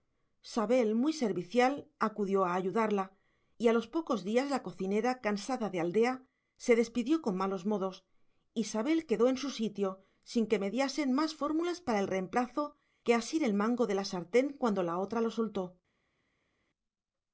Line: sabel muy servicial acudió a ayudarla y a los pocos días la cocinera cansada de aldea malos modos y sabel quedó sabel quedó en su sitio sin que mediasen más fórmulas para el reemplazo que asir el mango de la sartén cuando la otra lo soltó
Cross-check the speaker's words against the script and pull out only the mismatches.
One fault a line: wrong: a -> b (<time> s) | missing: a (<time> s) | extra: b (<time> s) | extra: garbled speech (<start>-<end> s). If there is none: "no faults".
extra: se despidió con (6.6 s)
missing: sabel quedó (9.3 s)